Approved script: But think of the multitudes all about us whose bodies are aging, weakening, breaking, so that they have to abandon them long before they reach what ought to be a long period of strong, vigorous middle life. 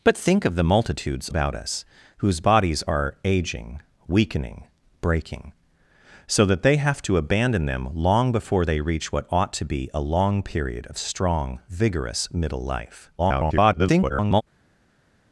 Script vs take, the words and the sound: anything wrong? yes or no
yes